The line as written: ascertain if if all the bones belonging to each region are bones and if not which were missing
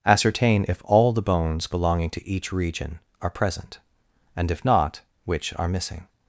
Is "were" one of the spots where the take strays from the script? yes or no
yes